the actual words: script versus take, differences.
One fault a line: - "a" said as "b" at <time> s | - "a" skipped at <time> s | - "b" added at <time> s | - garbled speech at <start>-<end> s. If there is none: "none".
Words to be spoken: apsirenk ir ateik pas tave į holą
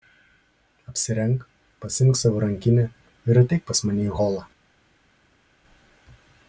- "pasiimk savo rankinę" added at 1.8 s
- "tave" said as "mane" at 3.9 s